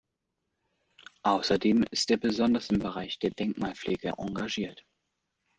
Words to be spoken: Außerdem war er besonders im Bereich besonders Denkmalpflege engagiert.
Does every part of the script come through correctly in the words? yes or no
no